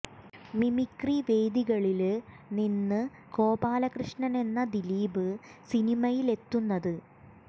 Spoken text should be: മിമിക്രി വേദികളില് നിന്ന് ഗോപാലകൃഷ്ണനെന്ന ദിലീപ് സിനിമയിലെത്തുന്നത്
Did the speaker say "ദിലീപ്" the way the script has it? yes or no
yes